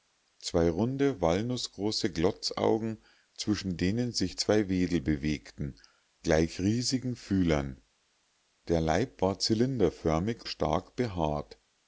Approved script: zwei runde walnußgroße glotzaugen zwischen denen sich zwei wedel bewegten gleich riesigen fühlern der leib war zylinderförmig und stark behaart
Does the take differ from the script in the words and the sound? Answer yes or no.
yes